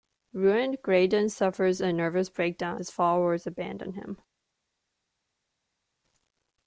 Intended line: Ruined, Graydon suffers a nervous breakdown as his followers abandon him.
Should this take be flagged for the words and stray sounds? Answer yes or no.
yes